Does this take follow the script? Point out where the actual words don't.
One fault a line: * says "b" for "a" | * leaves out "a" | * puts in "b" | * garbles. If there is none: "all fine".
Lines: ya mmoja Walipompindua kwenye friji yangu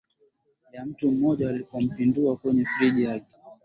* puts in "mtu"
* says "yake" for "yangu"